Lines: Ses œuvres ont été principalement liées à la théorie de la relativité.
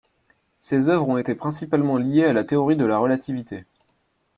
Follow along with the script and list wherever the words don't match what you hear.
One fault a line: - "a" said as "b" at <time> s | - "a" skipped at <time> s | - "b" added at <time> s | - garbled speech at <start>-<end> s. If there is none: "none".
none